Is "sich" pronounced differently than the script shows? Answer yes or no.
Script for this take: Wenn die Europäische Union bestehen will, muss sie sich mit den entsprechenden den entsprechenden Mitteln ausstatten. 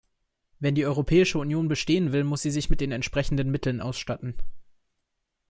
no